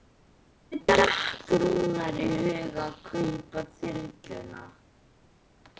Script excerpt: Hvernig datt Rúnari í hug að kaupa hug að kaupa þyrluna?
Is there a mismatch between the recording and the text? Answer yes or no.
yes